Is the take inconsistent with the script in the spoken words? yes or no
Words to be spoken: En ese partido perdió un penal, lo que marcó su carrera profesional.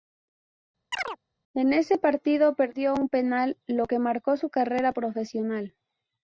no